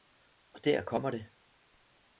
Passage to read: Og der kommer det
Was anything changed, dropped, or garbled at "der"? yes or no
no